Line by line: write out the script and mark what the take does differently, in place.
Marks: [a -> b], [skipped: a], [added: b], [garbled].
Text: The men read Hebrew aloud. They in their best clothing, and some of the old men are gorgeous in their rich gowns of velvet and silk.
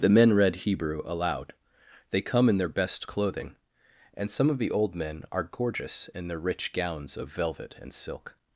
The men read Hebrew aloud. They [added: come] in their best clothing, and some of the old men are gorgeous in their rich gowns of velvet and silk.